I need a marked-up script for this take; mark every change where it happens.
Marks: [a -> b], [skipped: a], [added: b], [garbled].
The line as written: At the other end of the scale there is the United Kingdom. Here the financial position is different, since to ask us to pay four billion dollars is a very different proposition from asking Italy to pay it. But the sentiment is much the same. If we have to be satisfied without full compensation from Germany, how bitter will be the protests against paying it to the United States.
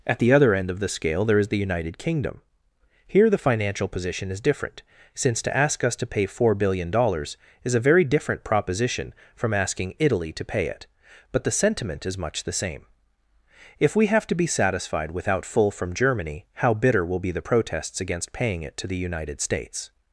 At the other end of the scale there is the United Kingdom. Here the financial position is different, since to ask us to pay four billion dollars is a very different proposition from asking Italy to pay it. But the sentiment is much the same. If we have to be satisfied without full [skipped: compensation] from Germany, how bitter will be the protests against paying it to the United States.